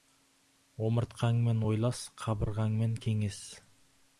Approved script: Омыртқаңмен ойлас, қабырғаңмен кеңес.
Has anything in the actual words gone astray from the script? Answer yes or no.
no